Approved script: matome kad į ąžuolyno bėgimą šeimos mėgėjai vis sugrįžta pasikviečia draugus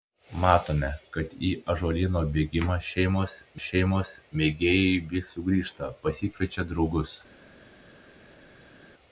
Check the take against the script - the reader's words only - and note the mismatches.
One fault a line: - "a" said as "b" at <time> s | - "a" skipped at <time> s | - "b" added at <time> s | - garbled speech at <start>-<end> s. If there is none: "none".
- "šeimos" added at 3.6 s